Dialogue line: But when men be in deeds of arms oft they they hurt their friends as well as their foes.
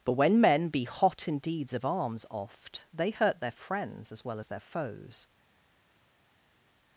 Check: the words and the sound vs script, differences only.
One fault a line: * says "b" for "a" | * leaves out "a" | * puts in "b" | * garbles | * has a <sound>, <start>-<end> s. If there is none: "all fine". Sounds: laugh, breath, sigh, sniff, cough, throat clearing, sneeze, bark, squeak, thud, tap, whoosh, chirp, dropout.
* puts in "hot"
* leaves out "they"